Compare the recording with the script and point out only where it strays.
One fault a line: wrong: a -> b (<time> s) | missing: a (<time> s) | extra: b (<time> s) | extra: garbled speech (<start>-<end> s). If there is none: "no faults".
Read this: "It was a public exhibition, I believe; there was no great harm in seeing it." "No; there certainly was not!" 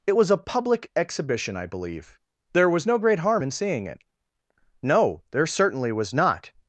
no faults